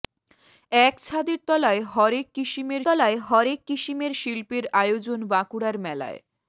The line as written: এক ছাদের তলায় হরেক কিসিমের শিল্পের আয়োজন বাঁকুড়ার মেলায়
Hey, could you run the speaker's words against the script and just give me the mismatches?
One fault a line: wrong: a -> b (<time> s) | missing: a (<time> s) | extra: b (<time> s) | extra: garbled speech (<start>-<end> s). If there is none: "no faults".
extra: তলায় হরেক কিসিমের (2.8 s)